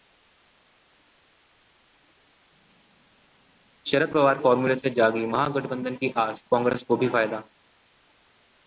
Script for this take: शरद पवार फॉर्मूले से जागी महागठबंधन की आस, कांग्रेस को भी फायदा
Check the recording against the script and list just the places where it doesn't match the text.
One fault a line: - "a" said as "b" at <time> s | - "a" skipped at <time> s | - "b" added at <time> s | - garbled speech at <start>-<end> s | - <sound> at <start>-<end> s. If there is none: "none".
none